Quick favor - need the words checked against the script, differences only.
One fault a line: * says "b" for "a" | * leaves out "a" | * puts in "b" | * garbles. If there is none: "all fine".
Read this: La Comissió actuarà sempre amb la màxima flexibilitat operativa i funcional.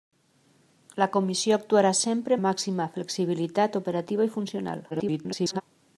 * leaves out "amb"
* garbles